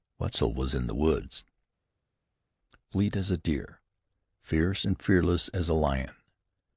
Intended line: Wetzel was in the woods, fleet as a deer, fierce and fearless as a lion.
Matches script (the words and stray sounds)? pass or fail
pass